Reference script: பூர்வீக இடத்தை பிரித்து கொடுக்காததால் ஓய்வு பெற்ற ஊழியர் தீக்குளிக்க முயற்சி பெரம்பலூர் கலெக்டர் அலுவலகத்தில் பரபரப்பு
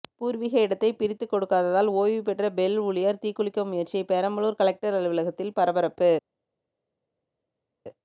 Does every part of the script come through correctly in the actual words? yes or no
no